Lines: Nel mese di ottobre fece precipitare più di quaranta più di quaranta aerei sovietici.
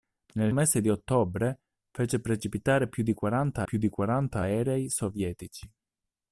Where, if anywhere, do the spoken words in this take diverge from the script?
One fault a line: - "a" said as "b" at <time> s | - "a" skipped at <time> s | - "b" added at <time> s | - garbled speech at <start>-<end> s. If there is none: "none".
none